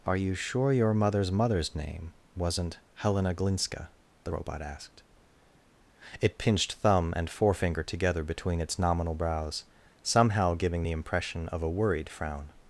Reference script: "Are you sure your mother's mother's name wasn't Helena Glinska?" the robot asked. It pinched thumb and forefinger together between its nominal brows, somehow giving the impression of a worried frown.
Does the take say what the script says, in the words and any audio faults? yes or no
yes